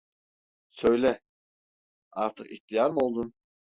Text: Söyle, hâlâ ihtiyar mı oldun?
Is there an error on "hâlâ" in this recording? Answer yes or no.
yes